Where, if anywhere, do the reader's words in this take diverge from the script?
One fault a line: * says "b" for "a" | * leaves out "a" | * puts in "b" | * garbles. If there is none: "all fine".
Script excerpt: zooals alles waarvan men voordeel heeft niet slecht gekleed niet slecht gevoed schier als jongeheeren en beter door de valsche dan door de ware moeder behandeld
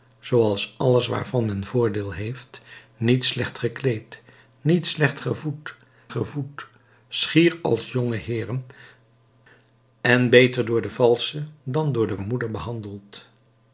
* puts in "gevoed"
* leaves out "ware"